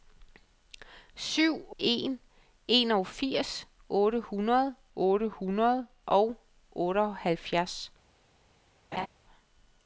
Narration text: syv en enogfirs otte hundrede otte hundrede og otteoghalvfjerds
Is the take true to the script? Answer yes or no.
yes